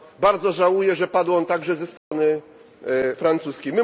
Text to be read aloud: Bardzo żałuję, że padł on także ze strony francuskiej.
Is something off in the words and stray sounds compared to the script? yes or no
yes